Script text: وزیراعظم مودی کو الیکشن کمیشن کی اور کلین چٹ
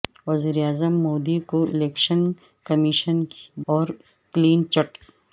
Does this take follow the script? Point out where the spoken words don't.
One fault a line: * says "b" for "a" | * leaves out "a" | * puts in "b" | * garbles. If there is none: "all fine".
all fine